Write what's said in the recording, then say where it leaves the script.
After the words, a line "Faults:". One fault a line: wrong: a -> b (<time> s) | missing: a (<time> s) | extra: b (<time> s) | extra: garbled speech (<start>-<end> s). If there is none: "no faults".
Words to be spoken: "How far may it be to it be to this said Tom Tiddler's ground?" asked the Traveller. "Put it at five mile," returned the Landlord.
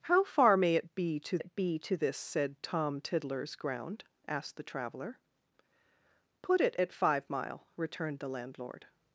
"How far may it be to it be to this said Tom Tiddler's ground?" asked the Traveller. "Put it at five mile," returned the Landlord.
Faults:
no faults